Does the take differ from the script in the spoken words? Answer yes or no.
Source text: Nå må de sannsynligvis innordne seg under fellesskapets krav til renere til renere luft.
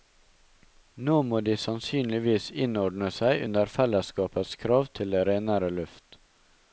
yes